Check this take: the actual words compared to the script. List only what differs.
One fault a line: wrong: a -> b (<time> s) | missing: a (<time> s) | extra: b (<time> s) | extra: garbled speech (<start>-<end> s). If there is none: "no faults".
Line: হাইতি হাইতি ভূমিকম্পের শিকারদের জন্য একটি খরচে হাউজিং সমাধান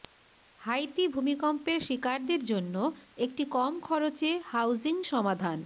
missing: হাইতি (1.0 s)
extra: কম (3.6 s)